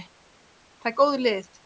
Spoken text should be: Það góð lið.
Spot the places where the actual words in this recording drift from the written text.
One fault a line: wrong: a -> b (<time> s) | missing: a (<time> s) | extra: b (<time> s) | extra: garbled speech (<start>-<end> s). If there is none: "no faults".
no faults